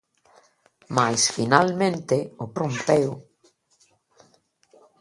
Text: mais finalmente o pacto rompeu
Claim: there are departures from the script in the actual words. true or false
true